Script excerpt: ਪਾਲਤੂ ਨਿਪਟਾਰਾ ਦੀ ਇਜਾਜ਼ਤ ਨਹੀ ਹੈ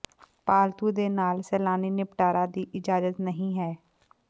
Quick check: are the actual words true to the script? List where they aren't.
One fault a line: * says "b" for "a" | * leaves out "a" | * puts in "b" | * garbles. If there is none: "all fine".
* puts in "ਦੇ ਨਾਲ ਸੈਲਾਨੀ"